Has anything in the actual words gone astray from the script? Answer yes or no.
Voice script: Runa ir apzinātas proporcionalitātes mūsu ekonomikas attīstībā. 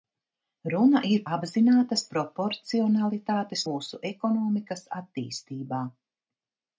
no